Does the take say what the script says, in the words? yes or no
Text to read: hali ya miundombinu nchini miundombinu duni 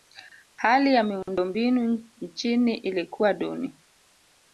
no